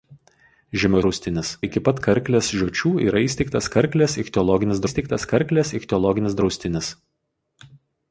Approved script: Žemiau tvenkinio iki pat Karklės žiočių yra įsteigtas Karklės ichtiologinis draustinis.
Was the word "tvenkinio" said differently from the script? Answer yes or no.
yes